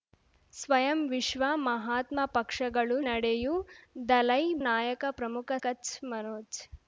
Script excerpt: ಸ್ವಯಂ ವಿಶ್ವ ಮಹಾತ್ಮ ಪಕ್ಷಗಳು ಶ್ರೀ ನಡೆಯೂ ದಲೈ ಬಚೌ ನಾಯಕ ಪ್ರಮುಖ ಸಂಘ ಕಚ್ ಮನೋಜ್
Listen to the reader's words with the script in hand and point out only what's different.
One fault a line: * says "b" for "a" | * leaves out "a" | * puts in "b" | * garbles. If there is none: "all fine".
* leaves out "ಶ್ರೀ"
* leaves out "ಬಚೌ"
* leaves out "ಸಂಘ"